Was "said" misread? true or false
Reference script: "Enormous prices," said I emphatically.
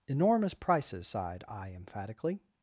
true